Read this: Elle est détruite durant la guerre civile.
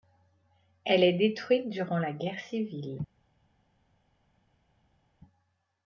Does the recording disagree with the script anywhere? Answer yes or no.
no